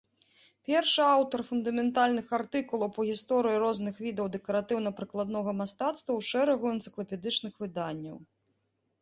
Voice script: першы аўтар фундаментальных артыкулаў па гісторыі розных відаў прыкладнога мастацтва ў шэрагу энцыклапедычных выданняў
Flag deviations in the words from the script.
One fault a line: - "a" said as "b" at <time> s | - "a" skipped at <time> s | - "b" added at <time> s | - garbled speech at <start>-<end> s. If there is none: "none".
- "дэкаратыўна" added at 4.3 s